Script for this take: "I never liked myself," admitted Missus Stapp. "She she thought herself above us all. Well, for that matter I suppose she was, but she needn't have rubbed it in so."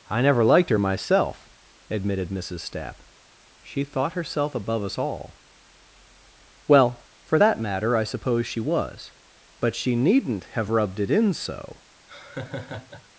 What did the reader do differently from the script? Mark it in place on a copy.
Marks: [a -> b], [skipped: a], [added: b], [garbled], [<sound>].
"I never liked [added: her] myself," admitted Missus Stapp. "She [skipped: she] thought herself above us all. Well, for that matter I suppose she was, but she needn't have rubbed it in so." [laugh]